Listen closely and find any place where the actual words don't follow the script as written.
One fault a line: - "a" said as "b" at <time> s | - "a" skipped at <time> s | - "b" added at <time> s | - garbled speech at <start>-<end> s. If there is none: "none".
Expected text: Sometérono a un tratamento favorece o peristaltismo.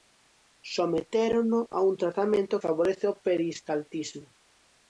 none